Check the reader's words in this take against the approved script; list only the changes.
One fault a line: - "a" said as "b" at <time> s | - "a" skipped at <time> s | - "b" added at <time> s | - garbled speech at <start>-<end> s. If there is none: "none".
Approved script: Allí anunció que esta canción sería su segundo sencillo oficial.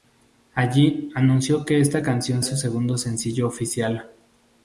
- "sería" skipped at 2.4 s